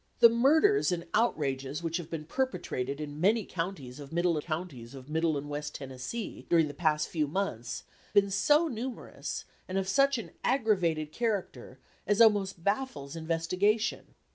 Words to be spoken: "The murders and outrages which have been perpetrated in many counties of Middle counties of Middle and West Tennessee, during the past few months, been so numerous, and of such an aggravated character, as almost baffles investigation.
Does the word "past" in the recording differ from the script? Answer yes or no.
no